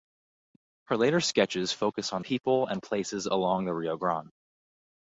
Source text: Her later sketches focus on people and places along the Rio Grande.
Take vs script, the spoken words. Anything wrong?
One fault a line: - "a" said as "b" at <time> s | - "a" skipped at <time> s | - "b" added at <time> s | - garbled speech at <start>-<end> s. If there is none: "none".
none